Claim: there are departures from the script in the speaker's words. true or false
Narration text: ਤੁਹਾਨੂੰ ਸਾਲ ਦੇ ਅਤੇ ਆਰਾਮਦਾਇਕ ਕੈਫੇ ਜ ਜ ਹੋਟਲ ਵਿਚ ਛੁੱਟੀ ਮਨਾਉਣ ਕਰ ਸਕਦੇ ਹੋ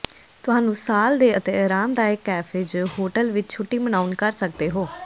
true